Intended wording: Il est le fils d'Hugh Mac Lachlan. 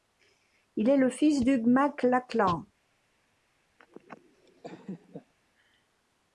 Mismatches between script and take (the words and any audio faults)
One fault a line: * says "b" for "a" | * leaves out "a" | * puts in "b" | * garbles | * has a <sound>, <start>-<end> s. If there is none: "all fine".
* has a laugh, 3.8-5.3 s